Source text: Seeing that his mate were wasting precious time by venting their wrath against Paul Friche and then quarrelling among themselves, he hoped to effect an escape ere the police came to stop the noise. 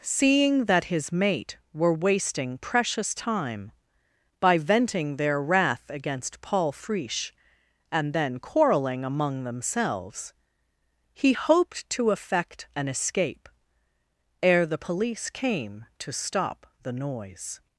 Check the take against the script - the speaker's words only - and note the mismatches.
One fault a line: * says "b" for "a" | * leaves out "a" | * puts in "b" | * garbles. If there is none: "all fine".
all fine